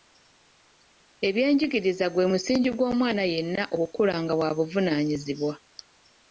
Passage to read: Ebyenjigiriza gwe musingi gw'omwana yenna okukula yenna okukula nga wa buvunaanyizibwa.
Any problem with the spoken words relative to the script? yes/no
yes